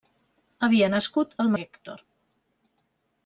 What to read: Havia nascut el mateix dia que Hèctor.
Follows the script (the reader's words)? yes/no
no